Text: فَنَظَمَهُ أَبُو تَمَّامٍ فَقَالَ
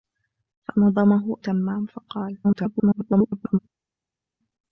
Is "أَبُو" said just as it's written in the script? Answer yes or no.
no